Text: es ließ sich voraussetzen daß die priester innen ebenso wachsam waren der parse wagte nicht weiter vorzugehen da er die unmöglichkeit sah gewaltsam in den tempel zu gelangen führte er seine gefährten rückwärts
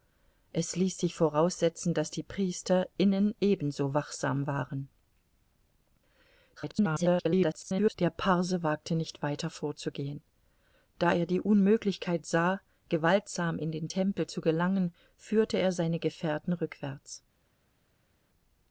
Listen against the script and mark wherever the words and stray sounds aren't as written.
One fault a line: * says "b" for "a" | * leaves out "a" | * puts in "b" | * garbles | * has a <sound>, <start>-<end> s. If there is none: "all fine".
* garbles